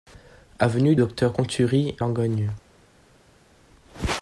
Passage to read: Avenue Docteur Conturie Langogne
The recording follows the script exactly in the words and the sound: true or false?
true